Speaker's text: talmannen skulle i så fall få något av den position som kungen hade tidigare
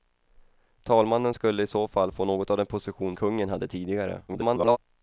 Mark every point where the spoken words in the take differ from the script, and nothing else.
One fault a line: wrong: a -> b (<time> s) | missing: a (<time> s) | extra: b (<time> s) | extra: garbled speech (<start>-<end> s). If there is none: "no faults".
missing: som (3.2 s)
extra: garbled speech (4.3-4.8 s)